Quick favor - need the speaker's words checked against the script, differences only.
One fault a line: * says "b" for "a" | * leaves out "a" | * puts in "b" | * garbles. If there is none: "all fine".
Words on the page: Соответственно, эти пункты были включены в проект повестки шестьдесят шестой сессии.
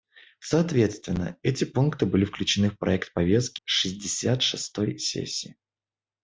all fine